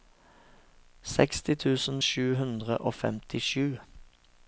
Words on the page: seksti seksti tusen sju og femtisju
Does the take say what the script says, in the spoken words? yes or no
no